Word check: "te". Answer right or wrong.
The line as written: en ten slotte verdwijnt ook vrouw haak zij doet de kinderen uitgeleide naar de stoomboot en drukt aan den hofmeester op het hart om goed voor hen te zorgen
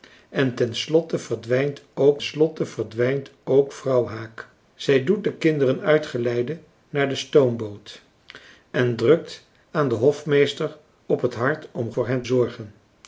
wrong